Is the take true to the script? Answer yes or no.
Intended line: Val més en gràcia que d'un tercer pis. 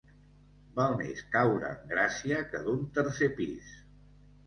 no